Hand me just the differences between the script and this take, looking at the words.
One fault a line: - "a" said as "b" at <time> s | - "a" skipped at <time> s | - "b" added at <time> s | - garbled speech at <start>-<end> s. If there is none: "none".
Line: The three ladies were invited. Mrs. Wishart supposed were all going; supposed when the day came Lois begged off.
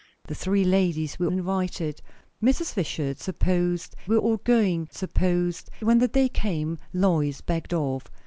none